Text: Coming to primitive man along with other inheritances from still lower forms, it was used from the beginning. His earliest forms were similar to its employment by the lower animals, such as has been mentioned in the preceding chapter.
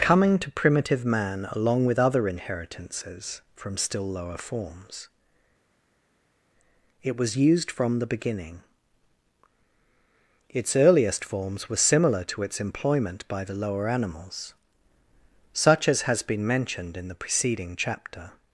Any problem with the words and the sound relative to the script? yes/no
yes